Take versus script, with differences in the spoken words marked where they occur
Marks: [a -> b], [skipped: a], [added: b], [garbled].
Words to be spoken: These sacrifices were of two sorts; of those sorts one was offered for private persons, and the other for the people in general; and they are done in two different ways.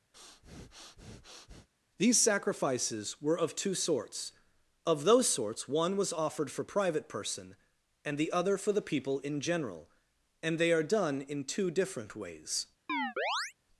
These sacrifices were of two sorts; of those sorts one was offered for private [persons, -> person] and the other for the people in general; and they are done in two different ways.